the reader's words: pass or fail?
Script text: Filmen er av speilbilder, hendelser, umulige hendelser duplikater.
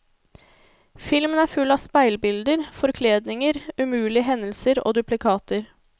fail